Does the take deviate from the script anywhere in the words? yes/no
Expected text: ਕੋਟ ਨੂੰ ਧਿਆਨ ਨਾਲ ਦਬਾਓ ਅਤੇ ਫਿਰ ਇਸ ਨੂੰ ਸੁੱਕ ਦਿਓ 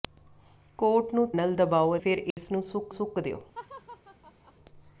yes